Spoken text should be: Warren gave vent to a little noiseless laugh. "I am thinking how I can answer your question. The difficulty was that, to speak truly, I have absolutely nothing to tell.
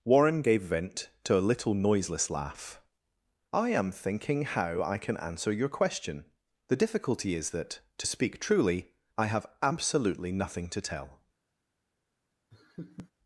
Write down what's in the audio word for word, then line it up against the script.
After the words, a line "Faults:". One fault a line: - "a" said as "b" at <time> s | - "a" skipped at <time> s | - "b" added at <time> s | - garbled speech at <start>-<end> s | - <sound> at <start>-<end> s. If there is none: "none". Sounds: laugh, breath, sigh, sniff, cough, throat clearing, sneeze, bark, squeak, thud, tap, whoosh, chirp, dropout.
Warren gave vent to a little noiseless laugh. "I am thinking how I can answer your question. The difficulty is that, to speak truly, I have absolutely nothing to tell.
Faults:
- "was" said as "is" at 7.3 s
- laugh at 12.5-13.1 s